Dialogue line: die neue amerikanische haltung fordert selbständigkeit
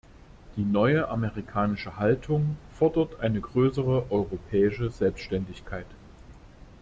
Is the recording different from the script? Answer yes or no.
yes